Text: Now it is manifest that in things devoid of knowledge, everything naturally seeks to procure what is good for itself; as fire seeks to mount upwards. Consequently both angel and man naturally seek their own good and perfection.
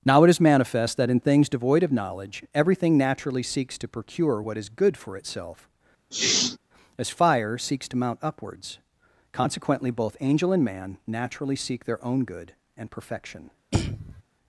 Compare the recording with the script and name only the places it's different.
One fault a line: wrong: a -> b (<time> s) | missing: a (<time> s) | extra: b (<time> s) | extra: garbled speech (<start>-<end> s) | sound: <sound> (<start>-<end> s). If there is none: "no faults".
sound: sneeze (6.1-6.6 s)
sound: throat clearing (13.7-14.2 s)